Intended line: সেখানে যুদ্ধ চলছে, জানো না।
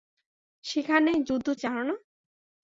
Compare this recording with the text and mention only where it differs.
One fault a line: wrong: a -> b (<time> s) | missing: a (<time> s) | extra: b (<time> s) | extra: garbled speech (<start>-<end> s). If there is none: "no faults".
missing: চলছে (1.5 s)